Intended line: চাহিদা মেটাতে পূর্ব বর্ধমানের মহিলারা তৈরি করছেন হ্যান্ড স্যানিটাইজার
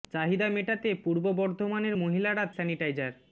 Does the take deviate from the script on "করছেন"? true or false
true